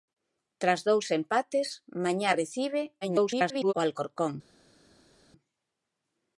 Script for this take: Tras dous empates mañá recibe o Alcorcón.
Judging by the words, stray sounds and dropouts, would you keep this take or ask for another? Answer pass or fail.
fail